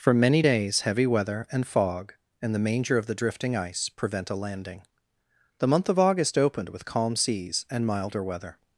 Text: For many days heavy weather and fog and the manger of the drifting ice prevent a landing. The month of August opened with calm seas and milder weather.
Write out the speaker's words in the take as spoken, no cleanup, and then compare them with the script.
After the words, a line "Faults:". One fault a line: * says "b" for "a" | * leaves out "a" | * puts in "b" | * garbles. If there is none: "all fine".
For many days heavy weather and fog and the manger of the drifting ice prevent a landing. The month of August opened with calm seas and milder weather.
Faults:
all fine